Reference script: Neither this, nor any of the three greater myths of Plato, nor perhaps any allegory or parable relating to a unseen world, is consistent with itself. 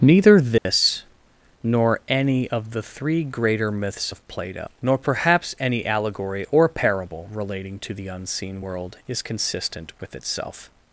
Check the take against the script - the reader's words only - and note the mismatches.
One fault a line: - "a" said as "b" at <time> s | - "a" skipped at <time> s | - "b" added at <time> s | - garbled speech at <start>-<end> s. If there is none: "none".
- "a" said as "the" at 7.9 s